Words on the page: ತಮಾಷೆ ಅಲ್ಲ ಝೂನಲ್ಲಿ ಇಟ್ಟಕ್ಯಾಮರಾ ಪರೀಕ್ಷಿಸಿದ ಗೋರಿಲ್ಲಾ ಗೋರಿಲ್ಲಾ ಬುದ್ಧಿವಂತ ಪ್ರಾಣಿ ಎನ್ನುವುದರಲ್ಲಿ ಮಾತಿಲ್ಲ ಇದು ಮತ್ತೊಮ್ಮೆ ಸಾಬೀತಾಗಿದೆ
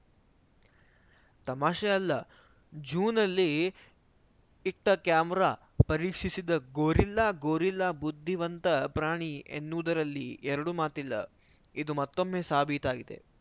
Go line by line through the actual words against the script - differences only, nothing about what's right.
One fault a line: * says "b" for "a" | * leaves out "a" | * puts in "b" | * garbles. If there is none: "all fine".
* puts in "ಎರಡು"